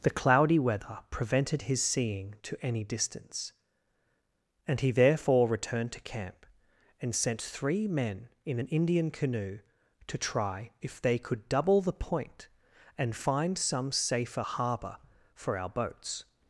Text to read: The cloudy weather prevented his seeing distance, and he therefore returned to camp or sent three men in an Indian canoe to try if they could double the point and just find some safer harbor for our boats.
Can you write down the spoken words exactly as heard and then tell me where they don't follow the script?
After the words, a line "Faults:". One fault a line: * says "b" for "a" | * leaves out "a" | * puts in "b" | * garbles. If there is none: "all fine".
The cloudy weather prevented his seeing to any distance, and he therefore returned to camp and sent three men in an Indian canoe to try if they could double the point and find some safer harbor for our boats.
Faults:
* puts in "to any"
* says "and" for "or"
* leaves out "just"